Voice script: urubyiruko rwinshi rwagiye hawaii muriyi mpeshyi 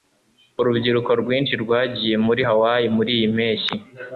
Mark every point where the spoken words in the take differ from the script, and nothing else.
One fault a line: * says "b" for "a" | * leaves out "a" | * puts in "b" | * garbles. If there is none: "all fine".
* puts in "muri"